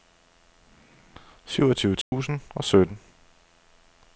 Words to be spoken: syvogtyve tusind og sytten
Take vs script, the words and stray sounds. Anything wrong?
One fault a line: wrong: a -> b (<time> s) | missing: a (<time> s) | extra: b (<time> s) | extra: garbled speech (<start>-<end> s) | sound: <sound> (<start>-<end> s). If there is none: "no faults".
sound: dropout (2.0-2.1 s)